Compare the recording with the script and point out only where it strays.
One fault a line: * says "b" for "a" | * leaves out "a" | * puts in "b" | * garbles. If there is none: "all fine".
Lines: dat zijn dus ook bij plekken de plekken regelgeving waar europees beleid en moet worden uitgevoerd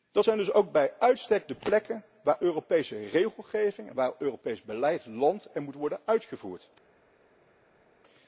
* says "uitstek" for "plekken"
* puts in "waar europese"
* puts in "landt"